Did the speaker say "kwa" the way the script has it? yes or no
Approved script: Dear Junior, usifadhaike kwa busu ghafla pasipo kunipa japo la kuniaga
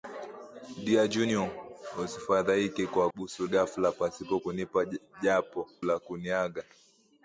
yes